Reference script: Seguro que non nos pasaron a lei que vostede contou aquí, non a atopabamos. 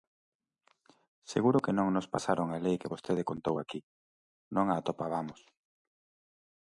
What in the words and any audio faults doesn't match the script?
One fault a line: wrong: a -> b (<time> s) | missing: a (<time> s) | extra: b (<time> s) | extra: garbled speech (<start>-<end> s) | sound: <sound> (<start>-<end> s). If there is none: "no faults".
no faults